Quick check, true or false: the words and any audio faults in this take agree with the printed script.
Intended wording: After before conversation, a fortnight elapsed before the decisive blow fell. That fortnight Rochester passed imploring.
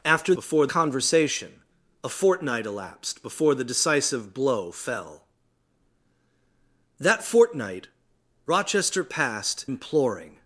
true